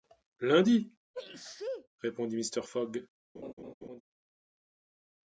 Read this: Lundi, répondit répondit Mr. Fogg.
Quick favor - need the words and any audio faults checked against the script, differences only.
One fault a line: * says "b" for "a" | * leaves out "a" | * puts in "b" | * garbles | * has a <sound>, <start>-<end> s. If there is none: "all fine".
* has a sneeze, 1.1-1.9 s
* leaves out "répondit"
* has a laugh, 3.4-4.0 s